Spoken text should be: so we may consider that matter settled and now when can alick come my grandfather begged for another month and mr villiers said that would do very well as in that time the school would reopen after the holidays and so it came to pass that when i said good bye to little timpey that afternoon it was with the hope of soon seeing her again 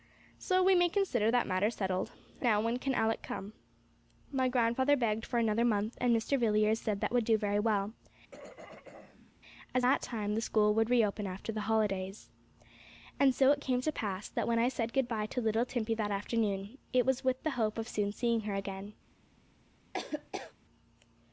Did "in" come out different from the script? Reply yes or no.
yes